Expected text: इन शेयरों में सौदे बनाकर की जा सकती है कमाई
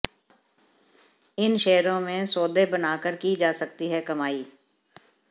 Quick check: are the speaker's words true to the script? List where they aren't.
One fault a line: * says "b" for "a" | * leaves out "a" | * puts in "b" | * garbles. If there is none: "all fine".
all fine